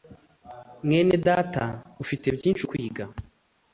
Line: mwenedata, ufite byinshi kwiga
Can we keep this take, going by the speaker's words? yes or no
yes